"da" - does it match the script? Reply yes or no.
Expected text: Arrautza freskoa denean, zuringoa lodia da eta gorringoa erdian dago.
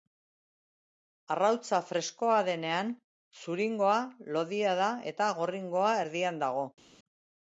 yes